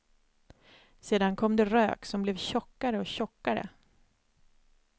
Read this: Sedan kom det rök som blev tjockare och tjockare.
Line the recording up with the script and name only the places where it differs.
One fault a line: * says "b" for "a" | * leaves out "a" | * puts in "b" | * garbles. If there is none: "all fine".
all fine